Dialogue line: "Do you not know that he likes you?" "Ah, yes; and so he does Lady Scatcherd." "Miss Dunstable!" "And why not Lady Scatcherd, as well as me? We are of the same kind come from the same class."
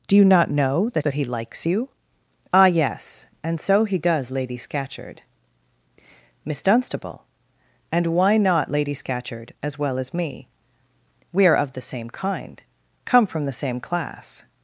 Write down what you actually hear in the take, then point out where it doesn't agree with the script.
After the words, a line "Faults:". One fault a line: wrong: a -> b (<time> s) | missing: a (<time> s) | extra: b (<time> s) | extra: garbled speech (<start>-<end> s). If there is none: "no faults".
"Do you not know that that he likes you?" "Ah, yes; and so he does Lady Scatcherd." "Miss Dunstable!" "And why not Lady Scatcherd, as well as me? We are of the same kind come from the same class."
Faults:
extra: that (1.0 s)